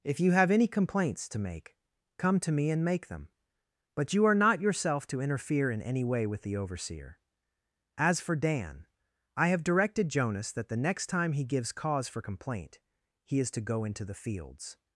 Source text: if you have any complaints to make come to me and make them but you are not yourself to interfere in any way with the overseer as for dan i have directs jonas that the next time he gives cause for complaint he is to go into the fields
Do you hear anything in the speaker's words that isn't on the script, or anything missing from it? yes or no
yes